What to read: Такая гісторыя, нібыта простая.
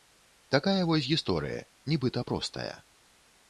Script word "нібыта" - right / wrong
right